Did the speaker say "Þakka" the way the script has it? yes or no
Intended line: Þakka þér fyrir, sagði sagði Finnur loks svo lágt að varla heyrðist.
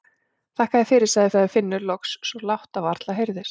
yes